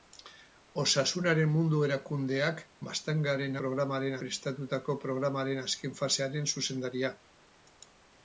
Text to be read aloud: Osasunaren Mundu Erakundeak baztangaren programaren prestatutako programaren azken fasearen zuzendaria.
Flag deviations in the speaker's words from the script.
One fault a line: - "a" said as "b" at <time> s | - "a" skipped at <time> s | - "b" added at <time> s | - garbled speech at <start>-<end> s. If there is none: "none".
none